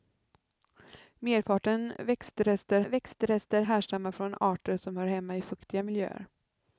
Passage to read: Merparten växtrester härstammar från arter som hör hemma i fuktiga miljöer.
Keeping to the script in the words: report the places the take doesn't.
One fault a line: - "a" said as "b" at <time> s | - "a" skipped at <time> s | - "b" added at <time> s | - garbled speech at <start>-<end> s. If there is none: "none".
- "växtrester" added at 2.8 s